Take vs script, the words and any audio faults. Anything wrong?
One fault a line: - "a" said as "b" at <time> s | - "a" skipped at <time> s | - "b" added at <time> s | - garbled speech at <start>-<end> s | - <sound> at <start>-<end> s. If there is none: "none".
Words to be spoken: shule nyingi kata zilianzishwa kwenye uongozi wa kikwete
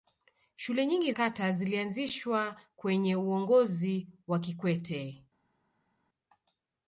none